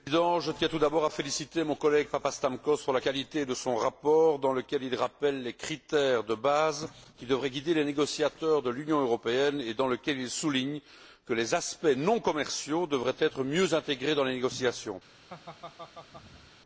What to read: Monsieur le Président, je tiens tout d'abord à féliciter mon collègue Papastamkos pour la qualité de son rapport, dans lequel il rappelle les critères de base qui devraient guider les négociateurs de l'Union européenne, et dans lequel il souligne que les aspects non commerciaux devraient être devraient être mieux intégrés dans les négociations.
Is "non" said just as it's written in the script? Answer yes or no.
yes